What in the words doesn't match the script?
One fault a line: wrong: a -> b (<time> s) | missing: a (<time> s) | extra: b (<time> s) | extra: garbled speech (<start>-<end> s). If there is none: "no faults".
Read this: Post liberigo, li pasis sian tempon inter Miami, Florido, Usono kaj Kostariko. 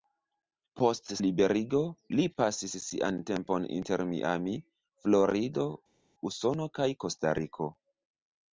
no faults